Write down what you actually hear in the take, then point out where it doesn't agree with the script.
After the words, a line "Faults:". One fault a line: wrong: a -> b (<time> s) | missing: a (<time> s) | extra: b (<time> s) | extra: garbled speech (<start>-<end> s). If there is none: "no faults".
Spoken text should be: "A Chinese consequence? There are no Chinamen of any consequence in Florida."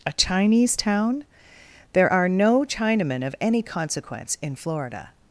"A Chinese town? There are no Chinamen of any consequence in Florida."
Faults:
wrong: consequence -> town (0.8 s)